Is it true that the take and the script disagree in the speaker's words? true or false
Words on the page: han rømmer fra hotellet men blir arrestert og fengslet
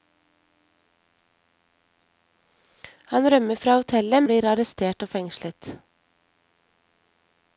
true